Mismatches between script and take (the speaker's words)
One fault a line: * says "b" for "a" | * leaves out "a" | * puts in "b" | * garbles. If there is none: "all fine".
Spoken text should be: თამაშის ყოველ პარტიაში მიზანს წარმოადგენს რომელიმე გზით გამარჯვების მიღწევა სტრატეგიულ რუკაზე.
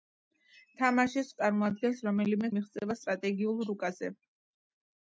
* leaves out "ყოველ პარტიაში მიზანს"
* leaves out "გზით გამარჯვების"